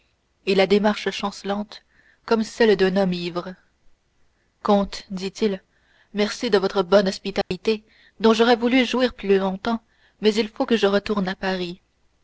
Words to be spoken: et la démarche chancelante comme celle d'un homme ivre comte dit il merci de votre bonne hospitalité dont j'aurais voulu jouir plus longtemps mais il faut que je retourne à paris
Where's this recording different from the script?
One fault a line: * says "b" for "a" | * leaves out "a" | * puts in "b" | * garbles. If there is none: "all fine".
all fine